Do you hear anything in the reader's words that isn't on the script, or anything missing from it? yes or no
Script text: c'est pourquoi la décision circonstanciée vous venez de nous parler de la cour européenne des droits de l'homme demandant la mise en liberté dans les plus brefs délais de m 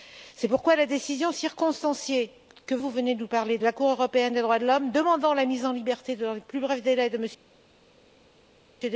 no